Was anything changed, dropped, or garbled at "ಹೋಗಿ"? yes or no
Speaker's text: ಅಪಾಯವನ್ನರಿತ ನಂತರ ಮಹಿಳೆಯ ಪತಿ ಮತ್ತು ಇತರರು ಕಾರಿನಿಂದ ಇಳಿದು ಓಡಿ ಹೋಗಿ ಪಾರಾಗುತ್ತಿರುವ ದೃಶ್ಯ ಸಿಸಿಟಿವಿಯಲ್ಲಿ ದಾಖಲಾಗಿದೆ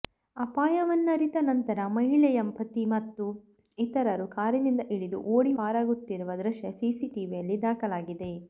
yes